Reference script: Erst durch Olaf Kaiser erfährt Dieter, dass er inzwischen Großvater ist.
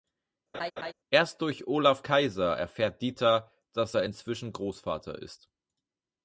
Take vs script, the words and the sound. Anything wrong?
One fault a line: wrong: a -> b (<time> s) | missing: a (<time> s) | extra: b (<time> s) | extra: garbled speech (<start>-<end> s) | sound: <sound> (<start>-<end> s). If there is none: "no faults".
sound: laugh (0.5-0.9 s)